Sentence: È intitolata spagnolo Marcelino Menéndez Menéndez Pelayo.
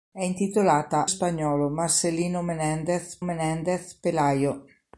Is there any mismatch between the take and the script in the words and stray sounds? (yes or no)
no